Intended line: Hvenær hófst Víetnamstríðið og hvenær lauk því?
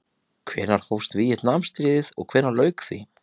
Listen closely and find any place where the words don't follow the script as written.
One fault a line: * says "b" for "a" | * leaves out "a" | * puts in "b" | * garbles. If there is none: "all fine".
all fine